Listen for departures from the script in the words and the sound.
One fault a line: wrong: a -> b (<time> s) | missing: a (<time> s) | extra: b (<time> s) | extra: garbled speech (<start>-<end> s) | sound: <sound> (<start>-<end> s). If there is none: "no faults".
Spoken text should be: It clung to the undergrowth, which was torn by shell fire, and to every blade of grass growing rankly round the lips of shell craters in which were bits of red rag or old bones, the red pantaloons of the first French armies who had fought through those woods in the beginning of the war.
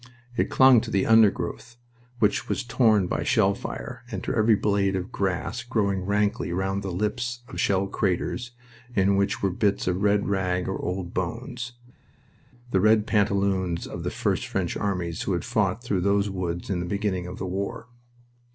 no faults